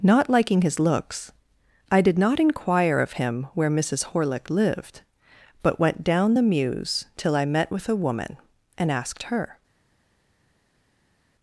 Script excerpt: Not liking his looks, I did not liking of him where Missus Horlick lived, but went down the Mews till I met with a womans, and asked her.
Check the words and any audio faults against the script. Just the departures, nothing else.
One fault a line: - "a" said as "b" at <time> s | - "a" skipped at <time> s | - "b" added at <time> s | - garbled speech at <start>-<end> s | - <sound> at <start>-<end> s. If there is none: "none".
- "liking" said as "inquire" at 2.4 s
- "womans" said as "woman" at 8.0 s